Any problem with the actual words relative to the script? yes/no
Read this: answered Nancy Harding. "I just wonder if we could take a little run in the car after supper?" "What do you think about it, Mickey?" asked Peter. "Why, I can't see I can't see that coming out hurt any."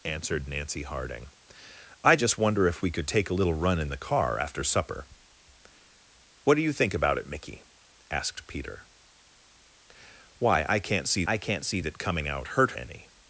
no